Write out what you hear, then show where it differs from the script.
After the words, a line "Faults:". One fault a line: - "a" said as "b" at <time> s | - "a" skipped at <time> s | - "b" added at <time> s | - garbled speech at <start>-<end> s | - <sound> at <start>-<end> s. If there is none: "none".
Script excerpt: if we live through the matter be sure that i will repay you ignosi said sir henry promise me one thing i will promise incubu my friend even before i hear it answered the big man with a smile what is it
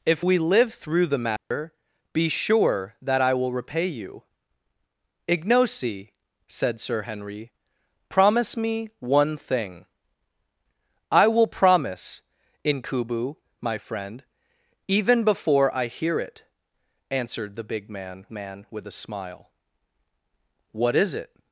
if we live through the matter be sure that i will repay you ignosi said sir henry promise me one thing i will promise incubu my friend even before i hear it answered the big man man with a smile what is it
Faults:
- dropout at 1.4-1.5 s
- "man" added at 18.3 s